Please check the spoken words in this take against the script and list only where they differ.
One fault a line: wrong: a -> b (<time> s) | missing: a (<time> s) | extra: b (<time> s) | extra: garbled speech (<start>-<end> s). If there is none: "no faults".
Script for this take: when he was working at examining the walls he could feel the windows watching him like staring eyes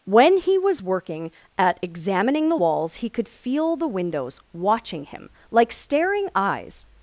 no faults